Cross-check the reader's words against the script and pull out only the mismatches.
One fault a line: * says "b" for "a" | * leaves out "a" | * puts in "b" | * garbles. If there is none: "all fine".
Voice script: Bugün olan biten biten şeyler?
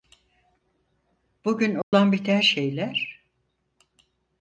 * leaves out "biten"